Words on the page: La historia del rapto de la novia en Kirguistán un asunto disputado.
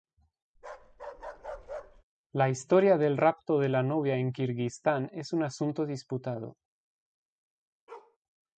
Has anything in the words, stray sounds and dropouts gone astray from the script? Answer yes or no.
yes